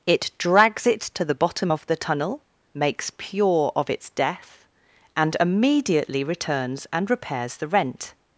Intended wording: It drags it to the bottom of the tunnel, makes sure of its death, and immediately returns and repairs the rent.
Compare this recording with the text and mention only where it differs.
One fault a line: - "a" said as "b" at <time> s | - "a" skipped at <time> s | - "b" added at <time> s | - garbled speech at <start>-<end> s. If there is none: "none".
- "sure" said as "pure" at 3.2 s